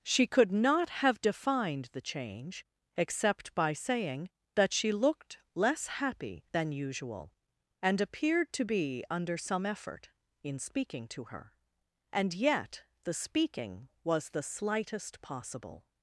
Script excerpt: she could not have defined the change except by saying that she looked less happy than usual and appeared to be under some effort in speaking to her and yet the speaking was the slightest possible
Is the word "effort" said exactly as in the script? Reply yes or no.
yes